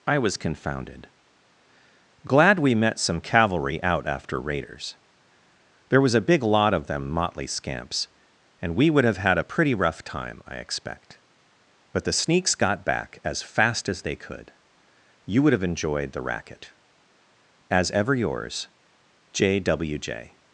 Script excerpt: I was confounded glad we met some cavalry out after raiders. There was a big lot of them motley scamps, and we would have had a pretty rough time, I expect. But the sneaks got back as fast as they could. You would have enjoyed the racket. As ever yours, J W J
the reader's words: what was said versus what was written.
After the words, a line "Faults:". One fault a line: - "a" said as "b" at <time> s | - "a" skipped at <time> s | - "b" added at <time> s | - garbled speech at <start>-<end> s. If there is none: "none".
I was confounded glad we met some cavalry out after raiders. There was a big lot of them motley scamps, and we would have had a pretty rough time, I expect. But the sneaks got back as fast as they could. You would have enjoyed the racket. As ever yours, J W J
Faults:
none